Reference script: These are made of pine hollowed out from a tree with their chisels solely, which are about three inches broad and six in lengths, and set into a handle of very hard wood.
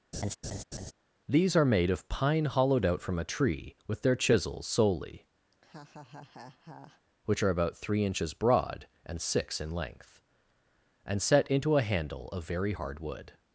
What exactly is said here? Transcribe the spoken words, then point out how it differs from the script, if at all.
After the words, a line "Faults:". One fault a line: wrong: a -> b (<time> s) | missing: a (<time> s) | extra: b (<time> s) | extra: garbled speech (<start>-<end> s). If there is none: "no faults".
These are made of pine hollowed out from a tree with their chisels solely, which are about three inches broad and six in length, and set into a handle of very hard wood.
Faults:
wrong: lengths -> length (9.7 s)